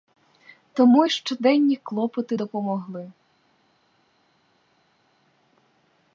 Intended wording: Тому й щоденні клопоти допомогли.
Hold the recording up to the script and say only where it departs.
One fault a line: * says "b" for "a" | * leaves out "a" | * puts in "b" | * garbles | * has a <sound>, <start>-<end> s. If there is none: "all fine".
all fine